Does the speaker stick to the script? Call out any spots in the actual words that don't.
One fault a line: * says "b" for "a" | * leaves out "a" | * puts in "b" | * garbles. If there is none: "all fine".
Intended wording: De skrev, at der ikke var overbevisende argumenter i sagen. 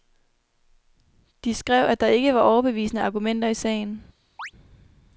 all fine